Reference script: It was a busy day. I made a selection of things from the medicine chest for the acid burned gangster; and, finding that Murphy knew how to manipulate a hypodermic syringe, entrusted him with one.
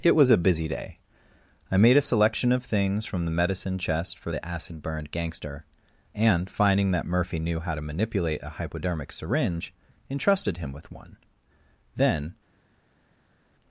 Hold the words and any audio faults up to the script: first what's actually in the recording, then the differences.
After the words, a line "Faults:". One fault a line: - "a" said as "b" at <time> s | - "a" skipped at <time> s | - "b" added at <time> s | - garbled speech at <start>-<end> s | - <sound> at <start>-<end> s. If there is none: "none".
It was a busy day. I made a selection of things from the medicine chest for the acid burned gangster; and, finding that Murphy knew how to manipulate a hypodermic syringe, entrusted him with one. Then
Faults:
- "Then" added at 11.9 s